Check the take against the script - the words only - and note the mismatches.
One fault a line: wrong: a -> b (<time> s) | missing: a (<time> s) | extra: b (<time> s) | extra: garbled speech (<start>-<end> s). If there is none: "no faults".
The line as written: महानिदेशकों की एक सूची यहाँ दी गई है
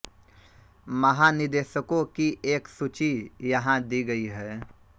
no faults